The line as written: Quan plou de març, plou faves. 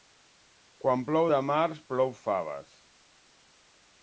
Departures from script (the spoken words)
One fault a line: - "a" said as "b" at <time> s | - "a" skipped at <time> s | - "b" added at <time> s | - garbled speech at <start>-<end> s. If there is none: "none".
none